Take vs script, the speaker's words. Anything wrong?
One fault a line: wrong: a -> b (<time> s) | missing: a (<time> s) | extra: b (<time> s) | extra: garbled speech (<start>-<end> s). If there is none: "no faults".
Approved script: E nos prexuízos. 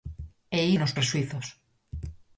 no faults